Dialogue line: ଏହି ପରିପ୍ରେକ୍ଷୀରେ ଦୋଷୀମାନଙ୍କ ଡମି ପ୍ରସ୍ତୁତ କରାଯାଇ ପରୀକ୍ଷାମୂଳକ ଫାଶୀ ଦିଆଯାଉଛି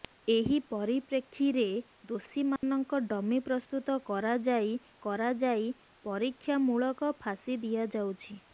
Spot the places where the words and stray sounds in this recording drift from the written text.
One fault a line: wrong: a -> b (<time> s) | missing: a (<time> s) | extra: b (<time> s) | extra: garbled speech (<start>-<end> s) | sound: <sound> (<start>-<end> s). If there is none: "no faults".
sound: dropout (2.6-2.6 s)
extra: କରାଯାଇ (5.0 s)